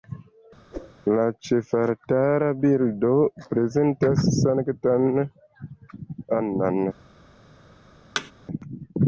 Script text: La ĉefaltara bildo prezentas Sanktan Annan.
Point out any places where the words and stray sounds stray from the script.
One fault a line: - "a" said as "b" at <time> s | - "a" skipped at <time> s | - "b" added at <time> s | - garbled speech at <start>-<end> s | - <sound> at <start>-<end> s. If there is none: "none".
- whoosh at 0.7-1.0 s
- thud at 8.2-8.3 s